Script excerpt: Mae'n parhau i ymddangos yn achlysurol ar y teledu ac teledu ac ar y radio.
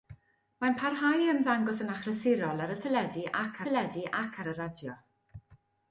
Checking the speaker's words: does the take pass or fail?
pass